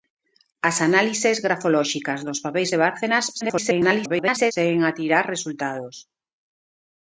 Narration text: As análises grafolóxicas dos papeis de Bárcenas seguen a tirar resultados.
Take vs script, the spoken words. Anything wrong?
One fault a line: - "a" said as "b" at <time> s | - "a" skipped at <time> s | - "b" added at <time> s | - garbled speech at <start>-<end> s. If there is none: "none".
- garbled speech at 3.4-4.5 s